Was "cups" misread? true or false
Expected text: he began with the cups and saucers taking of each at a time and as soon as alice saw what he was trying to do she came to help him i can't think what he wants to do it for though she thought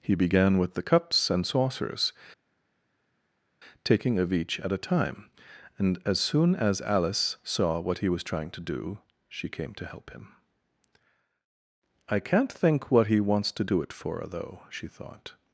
false